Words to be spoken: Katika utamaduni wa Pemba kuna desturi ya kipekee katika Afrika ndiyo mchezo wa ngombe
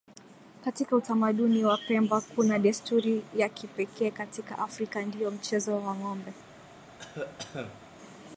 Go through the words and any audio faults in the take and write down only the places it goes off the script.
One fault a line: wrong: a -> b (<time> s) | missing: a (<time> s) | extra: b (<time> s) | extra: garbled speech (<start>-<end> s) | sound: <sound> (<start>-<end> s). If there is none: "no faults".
sound: cough (7.0-7.9 s)